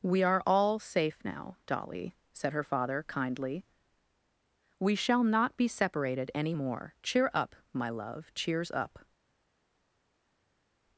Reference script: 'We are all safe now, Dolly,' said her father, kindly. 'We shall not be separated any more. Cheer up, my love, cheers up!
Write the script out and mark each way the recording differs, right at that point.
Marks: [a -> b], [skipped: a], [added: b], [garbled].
'We are all safe now, Dolly,' said her father, kindly. 'We shall not be separated any more. Cheer up, my love, cheers up!